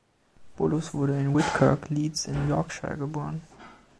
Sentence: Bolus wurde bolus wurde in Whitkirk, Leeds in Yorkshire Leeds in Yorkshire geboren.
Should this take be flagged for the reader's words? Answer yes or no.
yes